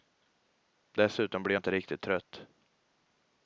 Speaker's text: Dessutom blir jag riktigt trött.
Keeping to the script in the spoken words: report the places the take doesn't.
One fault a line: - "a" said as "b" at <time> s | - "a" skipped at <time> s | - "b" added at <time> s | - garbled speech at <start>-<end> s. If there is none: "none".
- "inte" added at 1.6 s